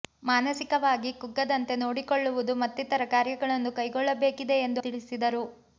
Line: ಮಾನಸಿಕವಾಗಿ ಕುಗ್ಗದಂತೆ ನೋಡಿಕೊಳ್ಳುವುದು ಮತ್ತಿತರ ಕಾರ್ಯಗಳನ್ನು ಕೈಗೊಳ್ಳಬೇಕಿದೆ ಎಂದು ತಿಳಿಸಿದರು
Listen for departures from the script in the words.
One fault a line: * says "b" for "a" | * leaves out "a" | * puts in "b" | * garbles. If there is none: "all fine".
all fine